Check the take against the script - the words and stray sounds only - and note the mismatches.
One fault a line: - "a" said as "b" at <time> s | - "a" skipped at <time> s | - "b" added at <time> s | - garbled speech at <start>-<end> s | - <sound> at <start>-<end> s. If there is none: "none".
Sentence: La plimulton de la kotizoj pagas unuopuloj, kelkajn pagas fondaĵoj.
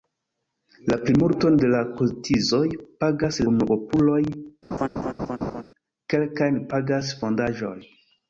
- laugh at 4.7-5.6 s